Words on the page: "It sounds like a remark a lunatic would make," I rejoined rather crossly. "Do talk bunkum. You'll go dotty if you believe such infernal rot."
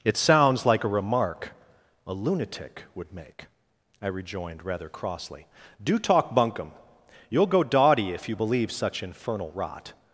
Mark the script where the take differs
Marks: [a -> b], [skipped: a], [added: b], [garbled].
"It sounds like a remark a lunatic would make," I rejoined rather crossly. "Do talk bunkum. You'll go dotty if you believe such infernal rot."